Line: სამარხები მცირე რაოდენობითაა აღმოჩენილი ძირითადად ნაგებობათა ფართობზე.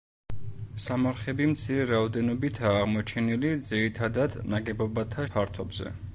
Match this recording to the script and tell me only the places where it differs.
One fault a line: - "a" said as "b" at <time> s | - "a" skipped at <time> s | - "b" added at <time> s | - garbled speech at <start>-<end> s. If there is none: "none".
none